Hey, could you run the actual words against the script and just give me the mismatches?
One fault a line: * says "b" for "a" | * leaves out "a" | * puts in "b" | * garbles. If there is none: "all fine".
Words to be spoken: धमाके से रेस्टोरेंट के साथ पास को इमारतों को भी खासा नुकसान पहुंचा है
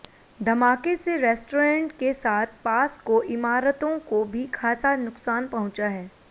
all fine